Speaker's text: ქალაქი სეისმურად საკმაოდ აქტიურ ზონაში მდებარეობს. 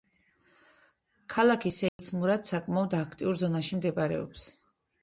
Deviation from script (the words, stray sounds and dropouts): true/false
true